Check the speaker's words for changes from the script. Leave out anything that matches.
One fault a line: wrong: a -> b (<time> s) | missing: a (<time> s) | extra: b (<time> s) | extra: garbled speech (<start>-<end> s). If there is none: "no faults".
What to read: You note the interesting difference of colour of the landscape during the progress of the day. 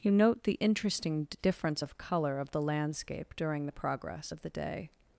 no faults